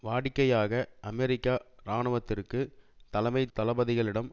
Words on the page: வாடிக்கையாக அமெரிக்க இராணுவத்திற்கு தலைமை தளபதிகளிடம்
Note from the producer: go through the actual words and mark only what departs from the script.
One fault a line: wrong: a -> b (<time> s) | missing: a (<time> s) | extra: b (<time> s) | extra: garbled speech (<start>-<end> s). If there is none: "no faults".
no faults